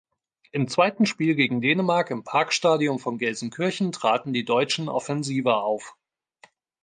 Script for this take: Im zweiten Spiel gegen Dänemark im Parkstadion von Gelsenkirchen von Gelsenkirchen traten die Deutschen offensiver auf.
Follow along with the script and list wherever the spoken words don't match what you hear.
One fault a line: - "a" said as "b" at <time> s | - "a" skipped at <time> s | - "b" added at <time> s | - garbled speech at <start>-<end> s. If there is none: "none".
- "von Gelsenkirchen" skipped at 3.9 s